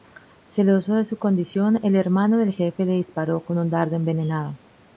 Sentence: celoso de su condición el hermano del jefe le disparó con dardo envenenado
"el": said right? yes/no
yes